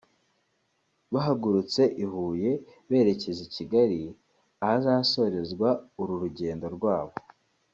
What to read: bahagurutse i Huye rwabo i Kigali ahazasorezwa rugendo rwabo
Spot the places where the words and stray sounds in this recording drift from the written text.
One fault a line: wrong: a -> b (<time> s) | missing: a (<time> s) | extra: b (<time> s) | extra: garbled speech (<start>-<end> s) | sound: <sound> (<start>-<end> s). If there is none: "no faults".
wrong: rwabo -> berekeza (2.9 s)
extra: uru (6.0 s)